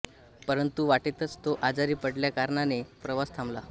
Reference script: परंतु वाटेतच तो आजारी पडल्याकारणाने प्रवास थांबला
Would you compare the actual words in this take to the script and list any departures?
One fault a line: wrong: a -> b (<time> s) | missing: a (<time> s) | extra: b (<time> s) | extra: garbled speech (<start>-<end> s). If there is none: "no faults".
no faults